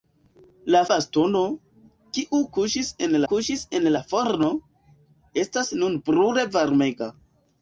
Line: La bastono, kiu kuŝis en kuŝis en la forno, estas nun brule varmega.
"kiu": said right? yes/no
yes